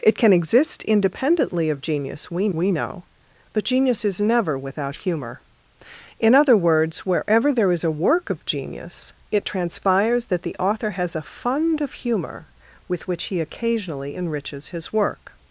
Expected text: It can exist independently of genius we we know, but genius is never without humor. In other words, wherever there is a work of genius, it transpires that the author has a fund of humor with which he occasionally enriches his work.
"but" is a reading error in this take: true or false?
false